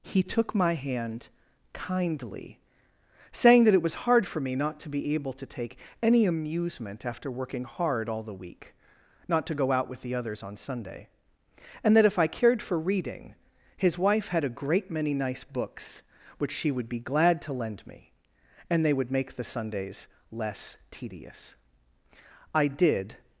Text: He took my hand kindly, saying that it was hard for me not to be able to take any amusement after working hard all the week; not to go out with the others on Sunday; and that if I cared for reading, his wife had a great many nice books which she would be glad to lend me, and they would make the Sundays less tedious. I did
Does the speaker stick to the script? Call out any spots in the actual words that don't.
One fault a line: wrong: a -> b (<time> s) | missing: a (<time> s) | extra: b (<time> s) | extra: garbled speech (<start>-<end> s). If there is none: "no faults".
no faults